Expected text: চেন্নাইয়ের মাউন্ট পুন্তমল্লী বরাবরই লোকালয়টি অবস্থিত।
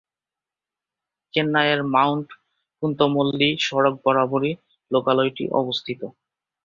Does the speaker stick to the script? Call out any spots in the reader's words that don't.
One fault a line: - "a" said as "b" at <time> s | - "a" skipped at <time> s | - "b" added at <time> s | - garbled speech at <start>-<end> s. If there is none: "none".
- "সড়ক" added at 3.6 s